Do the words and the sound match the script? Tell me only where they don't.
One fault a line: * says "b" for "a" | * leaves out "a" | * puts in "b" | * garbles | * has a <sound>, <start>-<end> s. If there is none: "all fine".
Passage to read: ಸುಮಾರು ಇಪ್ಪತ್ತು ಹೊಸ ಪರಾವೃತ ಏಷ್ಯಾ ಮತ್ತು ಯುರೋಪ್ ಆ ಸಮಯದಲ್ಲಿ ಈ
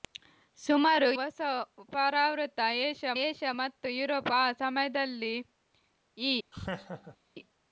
* leaves out "ಇಪ್ಪತ್ತು"
* puts in "ಏಷ್ಯಾ"
* has a laugh, 6.5-7.2 s